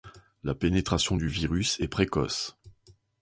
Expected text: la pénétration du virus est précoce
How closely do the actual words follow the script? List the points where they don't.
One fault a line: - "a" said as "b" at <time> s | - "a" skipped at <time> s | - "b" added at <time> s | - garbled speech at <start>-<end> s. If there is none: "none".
none